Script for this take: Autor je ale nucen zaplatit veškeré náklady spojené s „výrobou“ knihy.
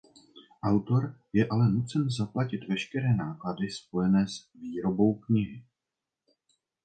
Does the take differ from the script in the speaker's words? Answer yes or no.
no